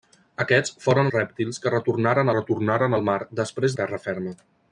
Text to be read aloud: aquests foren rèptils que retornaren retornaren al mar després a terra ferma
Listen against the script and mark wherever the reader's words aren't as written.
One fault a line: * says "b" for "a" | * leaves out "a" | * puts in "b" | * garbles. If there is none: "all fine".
all fine